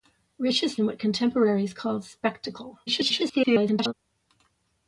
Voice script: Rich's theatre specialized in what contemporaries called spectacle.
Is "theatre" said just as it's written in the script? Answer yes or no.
no